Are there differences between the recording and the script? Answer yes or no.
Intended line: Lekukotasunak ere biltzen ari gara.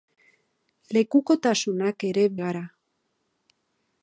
yes